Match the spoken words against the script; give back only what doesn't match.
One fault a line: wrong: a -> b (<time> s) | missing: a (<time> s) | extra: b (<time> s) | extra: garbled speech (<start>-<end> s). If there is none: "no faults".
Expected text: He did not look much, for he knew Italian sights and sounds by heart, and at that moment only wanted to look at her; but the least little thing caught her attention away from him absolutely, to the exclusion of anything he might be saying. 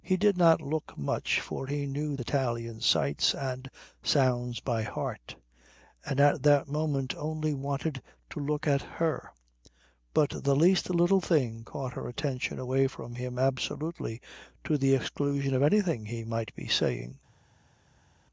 no faults